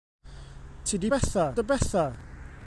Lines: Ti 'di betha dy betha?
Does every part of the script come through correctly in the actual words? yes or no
yes